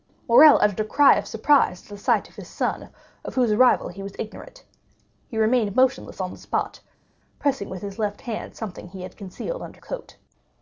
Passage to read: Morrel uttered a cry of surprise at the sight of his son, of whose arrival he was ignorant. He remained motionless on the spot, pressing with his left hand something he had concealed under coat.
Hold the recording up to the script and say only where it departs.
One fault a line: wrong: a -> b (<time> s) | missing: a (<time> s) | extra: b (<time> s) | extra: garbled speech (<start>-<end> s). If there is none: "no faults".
no faults